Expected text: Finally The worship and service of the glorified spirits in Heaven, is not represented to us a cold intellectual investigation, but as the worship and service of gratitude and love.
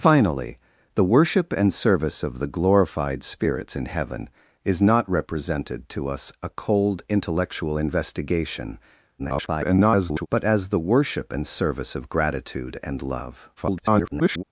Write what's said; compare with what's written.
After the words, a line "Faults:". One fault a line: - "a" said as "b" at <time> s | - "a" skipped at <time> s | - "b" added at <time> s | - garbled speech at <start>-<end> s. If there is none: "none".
Finally The worship and service of the glorified spirits in Heaven, is not represented to us a cold intellectual investigation, [garbled] but as the worship and service of gratitude and love. [garbled]
Faults:
- garbled speech at 9.2-10.3 s
- garbled speech at 13.6-14.4 s